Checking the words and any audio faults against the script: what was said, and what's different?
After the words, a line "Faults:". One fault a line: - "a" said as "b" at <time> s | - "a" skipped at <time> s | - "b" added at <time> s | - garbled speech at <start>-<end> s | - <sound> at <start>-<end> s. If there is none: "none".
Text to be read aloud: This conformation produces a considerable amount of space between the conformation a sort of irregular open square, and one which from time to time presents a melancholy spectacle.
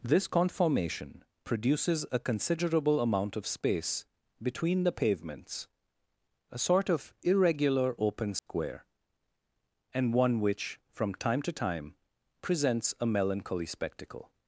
This conformation produces a considerable amount of space between the pavements a sort of irregular open square, and one which from time to time presents a melancholy spectacle.
Faults:
- "conformation" said as "pavements" at 4.9 s
- dropout at 8.4-8.5 s